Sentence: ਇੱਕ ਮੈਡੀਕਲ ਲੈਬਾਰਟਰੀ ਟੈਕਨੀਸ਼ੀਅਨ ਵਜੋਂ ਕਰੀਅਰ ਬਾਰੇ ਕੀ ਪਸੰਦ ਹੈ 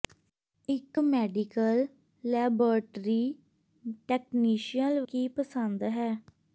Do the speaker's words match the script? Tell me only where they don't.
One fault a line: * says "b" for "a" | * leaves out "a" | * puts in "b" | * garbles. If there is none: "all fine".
* leaves out "ਵਜੋਂ ਕਰੀਅਰ ਬਾਰੇ"